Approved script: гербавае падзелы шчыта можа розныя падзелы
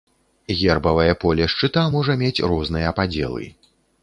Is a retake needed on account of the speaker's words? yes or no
yes